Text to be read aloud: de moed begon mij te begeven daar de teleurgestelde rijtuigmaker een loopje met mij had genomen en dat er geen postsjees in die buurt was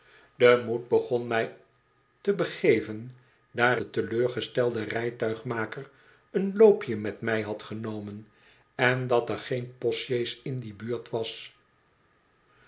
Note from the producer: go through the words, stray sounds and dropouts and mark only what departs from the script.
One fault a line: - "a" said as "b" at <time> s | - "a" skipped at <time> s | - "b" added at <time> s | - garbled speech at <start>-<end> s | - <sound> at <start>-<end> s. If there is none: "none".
none